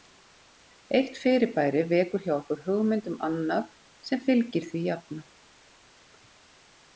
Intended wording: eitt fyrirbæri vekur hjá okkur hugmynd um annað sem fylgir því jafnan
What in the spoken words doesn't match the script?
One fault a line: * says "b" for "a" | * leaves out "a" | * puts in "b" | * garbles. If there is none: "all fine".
all fine